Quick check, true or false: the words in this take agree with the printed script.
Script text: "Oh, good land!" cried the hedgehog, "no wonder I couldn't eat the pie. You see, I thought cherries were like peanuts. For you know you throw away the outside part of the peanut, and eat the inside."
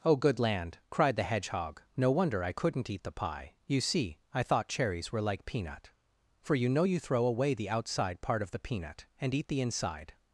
false